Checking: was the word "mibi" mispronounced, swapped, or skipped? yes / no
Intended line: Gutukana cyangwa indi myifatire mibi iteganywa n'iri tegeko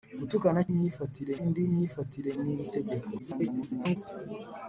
yes